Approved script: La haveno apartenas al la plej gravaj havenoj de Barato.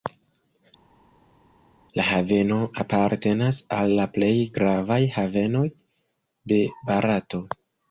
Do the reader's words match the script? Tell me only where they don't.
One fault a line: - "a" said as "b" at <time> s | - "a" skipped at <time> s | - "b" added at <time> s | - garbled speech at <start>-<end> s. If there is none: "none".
none